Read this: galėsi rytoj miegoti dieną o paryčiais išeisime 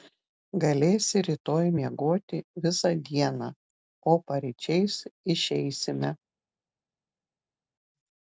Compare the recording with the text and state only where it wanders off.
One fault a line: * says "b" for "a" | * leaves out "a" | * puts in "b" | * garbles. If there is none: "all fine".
* puts in "visą"